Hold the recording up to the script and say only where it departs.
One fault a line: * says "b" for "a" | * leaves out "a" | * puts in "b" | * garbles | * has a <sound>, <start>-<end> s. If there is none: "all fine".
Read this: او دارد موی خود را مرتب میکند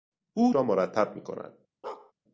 * leaves out "دارد موی خود"
* has a bark, 1.8-2.1 s